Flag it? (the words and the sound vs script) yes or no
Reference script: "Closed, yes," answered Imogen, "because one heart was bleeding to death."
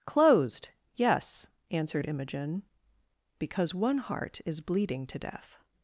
yes